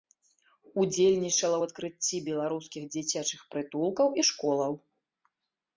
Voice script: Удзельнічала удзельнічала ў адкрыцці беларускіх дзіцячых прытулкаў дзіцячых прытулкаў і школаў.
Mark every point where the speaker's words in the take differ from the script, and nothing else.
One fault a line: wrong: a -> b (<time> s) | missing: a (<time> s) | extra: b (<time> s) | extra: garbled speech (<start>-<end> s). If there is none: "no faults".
missing: удзельнічала (1.6 s)
missing: дзіцячых прытулкаў (4.1 s)